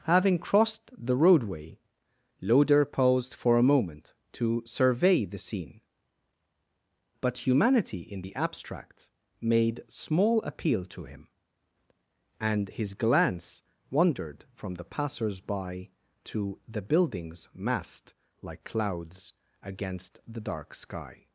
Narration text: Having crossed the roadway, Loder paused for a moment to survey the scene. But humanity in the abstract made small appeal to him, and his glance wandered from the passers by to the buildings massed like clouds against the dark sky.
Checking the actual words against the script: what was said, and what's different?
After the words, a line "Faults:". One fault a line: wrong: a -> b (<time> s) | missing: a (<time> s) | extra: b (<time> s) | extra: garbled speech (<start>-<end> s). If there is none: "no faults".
Having crossed the roadway, Loder paused for a moment to survey the scene. But humanity in the abstract made small appeal to him, and his glance wandered from the passers by to the buildings massed like clouds against the dark sky.
Faults:
no faults